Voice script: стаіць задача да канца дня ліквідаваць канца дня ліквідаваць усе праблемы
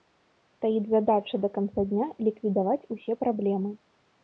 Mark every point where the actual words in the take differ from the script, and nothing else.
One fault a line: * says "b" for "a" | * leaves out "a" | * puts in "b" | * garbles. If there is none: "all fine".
* leaves out "канца дня ліквідаваць"